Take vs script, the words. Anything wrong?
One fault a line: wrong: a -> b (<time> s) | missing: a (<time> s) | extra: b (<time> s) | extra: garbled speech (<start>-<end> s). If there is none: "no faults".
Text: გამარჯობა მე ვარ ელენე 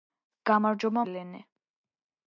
missing: მე ვარ (1.1 s)